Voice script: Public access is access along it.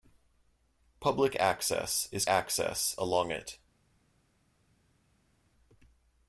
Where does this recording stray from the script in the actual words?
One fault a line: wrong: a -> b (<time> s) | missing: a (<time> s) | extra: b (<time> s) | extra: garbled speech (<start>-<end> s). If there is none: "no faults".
no faults